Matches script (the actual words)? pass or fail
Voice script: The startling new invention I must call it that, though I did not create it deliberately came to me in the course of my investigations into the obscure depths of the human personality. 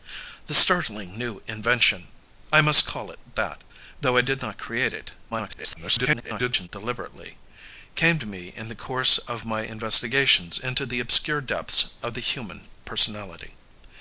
fail